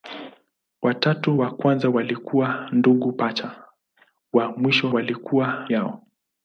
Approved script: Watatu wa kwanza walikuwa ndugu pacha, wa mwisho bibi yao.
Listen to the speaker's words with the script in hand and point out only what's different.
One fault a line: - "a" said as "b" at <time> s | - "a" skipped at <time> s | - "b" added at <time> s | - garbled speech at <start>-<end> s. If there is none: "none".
- "bibi" said as "walikuwa" at 4.9 s